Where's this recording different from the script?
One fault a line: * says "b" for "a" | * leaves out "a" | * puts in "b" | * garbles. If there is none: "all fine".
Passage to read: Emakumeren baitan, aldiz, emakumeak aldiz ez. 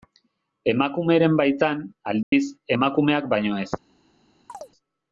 * says "baino" for "aldiz"